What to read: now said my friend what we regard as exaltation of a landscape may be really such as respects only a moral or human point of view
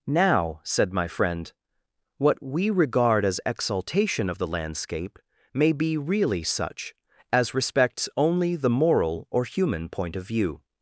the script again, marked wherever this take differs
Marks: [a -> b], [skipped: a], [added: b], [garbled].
now said my friend what we regard as exaltation of [a -> the] landscape may be really such as respects only [a -> the] moral or human point of view